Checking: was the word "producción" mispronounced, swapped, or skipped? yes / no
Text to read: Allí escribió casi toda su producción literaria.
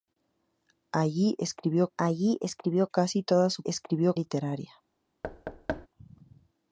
yes